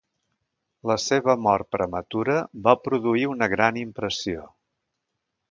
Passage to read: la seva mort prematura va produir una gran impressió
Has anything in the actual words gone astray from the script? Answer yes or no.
no